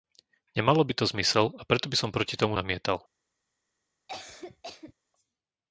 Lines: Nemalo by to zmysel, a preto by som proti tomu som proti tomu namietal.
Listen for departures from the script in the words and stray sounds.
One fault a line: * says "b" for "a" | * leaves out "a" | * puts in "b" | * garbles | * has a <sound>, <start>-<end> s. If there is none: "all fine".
* leaves out "som proti tomu"
* has a cough, 4.1-4.9 s